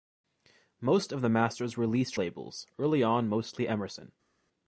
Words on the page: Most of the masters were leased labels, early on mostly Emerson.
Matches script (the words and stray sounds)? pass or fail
pass